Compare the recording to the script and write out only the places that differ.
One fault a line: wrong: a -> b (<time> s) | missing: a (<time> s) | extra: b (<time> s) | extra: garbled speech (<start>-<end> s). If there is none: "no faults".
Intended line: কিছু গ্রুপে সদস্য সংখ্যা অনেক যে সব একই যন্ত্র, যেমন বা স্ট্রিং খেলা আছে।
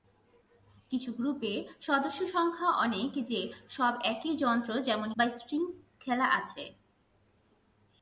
no faults